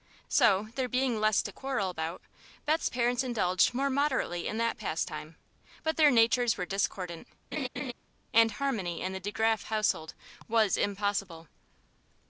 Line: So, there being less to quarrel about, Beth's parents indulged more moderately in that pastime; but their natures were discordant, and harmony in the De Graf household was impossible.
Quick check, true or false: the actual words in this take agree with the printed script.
true